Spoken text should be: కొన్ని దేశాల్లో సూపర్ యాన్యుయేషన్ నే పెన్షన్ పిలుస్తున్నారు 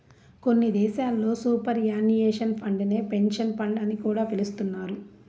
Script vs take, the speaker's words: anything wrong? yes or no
yes